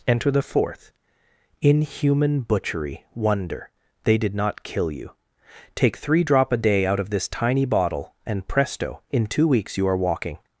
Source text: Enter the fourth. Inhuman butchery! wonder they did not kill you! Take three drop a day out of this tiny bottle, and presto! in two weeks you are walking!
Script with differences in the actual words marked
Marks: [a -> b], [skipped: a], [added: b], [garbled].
Enter the fourth. Inhuman butchery! wonder they did not kill you! Take three drop a day out of this tiny bottle, and presto! in two weeks you are walking!